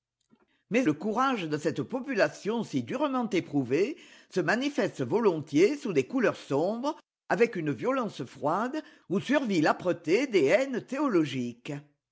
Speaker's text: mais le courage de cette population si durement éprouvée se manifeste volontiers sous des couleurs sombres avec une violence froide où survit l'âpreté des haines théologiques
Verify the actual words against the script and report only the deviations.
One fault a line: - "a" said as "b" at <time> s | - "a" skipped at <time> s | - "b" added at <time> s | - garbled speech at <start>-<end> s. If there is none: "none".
none